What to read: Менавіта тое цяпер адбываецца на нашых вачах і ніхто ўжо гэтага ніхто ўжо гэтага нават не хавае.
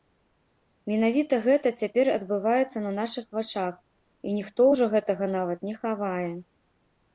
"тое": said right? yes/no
no